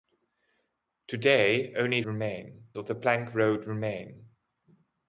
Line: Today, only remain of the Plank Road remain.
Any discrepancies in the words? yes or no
no